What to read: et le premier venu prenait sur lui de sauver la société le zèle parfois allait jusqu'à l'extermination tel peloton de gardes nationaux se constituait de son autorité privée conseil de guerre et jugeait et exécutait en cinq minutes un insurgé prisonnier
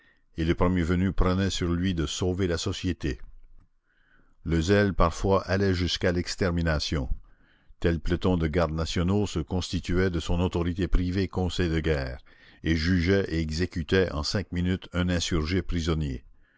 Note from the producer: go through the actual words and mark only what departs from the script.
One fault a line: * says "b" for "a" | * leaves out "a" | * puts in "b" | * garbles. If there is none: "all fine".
all fine